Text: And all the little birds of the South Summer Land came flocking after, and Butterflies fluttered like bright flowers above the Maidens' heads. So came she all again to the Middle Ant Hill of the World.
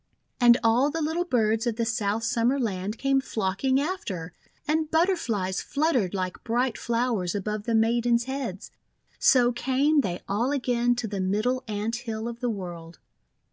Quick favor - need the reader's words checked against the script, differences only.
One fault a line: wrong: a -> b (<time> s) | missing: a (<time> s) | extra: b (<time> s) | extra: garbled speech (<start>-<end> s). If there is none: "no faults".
wrong: she -> they (10.0 s)